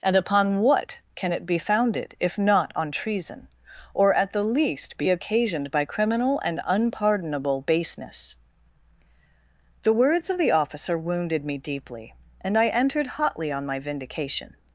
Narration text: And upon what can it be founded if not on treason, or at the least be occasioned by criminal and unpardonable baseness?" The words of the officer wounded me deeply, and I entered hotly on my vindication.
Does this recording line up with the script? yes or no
yes